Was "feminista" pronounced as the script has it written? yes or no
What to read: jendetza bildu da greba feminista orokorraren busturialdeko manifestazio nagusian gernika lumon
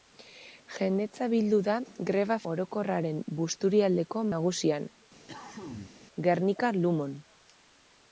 no